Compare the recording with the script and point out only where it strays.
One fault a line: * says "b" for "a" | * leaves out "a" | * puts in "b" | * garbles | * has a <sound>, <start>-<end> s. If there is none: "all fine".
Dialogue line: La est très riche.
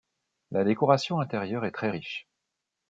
* puts in "décoration intérieure"